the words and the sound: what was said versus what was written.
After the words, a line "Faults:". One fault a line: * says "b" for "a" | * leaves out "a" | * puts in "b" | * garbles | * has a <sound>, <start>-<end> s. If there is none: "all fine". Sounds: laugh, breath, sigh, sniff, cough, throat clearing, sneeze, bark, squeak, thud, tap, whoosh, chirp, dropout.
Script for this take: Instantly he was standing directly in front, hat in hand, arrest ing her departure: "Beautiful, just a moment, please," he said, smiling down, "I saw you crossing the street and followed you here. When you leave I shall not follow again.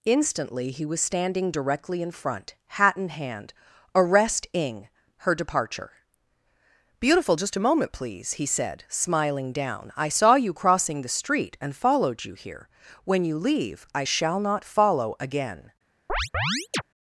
Instantly he was standing directly in front, hat in hand, arrest ing her departure: "Beautiful, just a moment, please," he said, smiling down, "I saw you crossing the street and followed you here. When you leave I shall not follow again.
Faults:
* has a chirp, 16.1-16.8 s